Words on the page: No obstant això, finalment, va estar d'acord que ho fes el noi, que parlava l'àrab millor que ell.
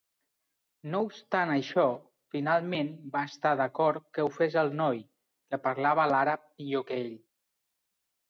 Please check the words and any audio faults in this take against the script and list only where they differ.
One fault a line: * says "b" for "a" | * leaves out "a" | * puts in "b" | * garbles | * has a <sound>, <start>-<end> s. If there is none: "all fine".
all fine